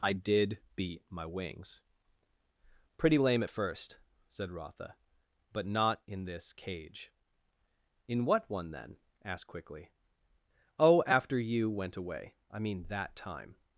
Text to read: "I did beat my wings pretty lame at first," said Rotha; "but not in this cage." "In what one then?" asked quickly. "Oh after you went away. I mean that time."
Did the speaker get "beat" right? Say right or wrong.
right